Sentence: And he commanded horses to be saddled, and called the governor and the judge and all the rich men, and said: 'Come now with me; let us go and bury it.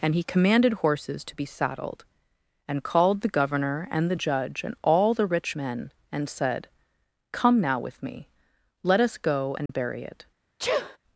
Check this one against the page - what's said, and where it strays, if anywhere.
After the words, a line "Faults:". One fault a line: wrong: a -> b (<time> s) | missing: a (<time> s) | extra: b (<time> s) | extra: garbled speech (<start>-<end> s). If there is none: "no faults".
And he commanded horses to be saddled, and called the governor and the judge and all the rich men, and said: 'Come now with me; let us go and bury it.
Faults:
no faults